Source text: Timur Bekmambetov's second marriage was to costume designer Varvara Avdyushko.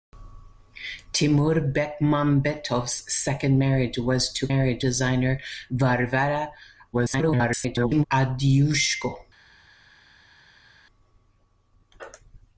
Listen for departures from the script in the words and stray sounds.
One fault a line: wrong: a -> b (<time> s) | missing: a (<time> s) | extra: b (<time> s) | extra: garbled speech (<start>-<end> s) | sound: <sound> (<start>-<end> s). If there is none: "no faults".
wrong: costume -> marriage (4.5 s)
extra: garbled speech (6.9-8.0 s)